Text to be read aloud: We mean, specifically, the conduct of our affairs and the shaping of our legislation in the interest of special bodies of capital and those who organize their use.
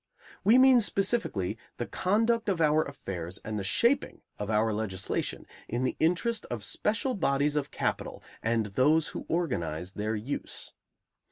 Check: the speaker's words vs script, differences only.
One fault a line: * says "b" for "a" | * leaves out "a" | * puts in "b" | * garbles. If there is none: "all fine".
all fine